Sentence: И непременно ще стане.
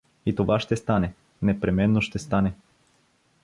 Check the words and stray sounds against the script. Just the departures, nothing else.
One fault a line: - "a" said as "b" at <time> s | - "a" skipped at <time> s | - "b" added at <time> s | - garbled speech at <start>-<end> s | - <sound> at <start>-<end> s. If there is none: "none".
- "това ще стане" added at 0.4 s